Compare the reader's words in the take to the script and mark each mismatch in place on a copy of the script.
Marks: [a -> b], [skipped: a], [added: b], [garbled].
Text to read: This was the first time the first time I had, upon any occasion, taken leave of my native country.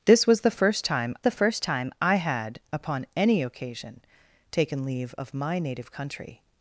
This was the first time the first time I had, upon any occasion, taken leave of my native country.